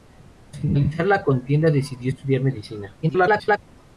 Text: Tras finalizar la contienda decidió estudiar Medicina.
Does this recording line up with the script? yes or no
no